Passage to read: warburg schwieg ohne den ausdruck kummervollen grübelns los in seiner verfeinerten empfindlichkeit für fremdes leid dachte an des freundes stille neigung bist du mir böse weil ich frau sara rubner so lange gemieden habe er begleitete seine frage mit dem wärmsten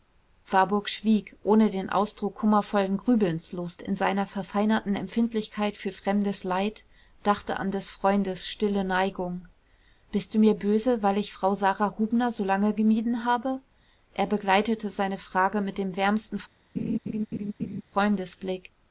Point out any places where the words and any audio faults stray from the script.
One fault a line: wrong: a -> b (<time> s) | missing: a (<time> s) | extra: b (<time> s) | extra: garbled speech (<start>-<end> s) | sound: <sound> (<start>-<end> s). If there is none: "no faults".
sound: laugh (16.8-17.8 s)